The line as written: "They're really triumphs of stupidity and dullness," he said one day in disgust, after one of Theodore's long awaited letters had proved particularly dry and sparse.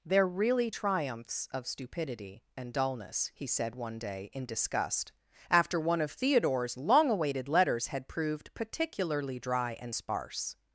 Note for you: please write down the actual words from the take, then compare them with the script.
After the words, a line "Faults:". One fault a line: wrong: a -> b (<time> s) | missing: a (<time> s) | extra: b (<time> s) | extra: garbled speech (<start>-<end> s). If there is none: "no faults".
"They're really triumphs of stupidity and dullness," he said one day in disgust, after one of Theodore's long awaited letters had proved particularly dry and sparse.
Faults:
no faults